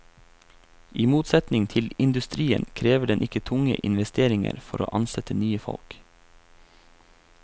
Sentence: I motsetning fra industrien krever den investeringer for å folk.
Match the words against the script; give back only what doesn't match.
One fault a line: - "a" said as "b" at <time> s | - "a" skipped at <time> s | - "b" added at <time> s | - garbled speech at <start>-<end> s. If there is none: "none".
- "fra" said as "til" at 1.7 s
- "ikke tunge" added at 3.2 s
- "ansette nye" added at 5.0 s